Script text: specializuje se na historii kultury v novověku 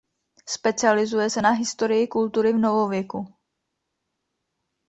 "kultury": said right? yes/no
yes